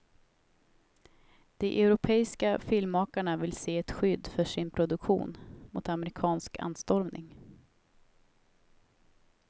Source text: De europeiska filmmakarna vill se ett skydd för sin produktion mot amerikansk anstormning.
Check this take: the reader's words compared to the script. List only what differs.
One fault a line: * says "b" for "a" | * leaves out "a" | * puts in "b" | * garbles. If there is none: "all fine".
all fine